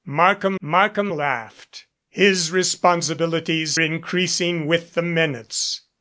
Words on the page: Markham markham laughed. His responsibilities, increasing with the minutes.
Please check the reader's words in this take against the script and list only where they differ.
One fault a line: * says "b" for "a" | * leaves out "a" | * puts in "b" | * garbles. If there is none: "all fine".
all fine